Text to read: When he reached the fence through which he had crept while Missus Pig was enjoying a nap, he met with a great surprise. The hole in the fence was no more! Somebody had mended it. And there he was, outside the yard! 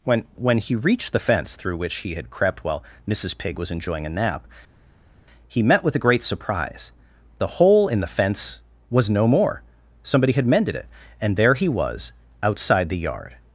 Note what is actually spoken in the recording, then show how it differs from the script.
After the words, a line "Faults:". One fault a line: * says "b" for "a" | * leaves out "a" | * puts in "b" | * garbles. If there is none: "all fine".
When when he reached the fence through which he had crept while Missus Pig was enjoying a nap, he met with a great surprise. The hole in the fence was no more! Somebody had mended it. And there he was, outside the yard!
Faults:
* puts in "when"